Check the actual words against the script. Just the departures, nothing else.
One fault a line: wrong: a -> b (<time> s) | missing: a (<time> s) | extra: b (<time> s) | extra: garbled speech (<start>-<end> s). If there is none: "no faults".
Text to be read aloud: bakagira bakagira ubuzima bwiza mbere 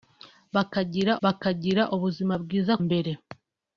no faults